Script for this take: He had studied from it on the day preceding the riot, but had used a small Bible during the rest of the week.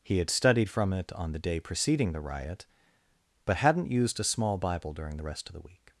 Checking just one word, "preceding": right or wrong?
right